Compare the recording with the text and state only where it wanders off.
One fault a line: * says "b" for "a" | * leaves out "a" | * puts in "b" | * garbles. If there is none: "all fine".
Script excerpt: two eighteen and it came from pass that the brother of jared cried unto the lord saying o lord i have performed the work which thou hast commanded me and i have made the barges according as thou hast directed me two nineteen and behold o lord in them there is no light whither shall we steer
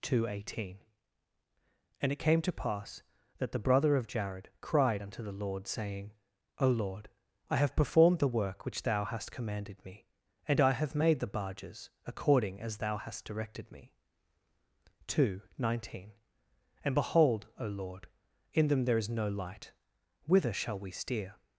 * says "to" for "from"